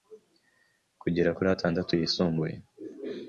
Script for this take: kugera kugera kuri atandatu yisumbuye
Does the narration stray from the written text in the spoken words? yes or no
yes